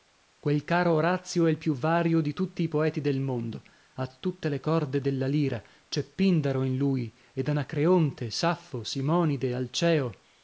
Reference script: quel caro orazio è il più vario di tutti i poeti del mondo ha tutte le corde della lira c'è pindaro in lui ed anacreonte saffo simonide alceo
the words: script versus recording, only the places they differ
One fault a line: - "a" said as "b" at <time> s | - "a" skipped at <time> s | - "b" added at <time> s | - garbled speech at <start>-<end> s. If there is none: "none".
none